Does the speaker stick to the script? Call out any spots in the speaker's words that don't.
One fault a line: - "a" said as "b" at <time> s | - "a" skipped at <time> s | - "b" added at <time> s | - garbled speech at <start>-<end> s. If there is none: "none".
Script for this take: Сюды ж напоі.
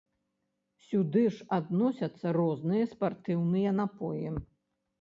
- "адносяцца розныя спартыўныя" added at 1.6 s